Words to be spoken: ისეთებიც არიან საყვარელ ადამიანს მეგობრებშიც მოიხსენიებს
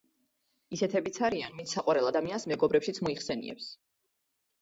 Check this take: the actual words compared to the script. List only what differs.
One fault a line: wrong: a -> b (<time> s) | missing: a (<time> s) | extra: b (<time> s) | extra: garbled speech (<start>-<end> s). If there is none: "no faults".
extra: ვინც (1.6 s)